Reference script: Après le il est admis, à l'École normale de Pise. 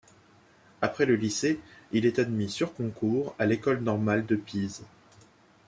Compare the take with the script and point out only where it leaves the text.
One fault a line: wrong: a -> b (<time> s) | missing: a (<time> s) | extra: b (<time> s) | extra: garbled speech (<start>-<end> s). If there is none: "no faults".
extra: lycée (1.1 s)
extra: sur concours (2.5 s)